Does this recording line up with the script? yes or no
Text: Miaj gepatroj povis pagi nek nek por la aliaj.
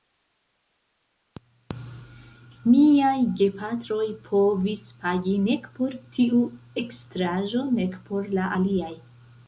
no